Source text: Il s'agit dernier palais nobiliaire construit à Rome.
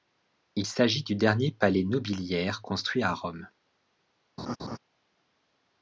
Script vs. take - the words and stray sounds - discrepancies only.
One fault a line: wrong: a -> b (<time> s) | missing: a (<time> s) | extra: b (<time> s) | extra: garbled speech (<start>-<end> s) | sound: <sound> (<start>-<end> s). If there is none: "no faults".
extra: du (1.0 s)
sound: laugh (4.4-4.8 s)